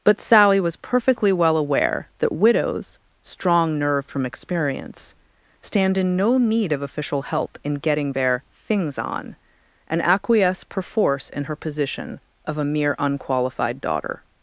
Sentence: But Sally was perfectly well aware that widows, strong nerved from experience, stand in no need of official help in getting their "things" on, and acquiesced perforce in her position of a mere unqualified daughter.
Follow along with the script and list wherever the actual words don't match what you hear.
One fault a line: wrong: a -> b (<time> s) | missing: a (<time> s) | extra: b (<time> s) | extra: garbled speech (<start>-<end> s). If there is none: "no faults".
wrong: acquiesced -> acquiesce (10.0 s)